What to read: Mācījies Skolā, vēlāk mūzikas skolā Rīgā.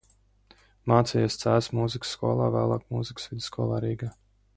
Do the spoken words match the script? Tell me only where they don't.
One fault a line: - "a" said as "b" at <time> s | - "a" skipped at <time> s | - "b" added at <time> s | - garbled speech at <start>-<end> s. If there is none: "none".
- "Cēsu mūzikas" added at 1.4 s
- "skolā" said as "vidusskolā" at 3.3 s